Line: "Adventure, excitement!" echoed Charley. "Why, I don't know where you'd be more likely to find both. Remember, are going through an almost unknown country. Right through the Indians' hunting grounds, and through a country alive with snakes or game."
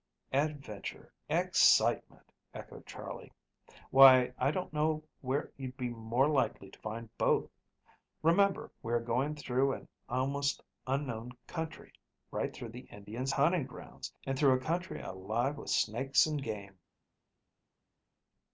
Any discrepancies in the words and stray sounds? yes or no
yes